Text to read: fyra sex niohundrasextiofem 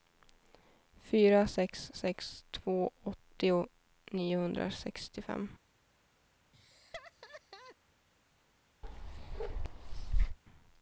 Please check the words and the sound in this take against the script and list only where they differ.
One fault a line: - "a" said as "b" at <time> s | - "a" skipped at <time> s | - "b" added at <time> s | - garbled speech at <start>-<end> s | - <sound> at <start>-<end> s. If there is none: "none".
- "sex två åttio" added at 1.9 s
- laugh at 6.5-7.8 s
- bark at 8.8-10.4 s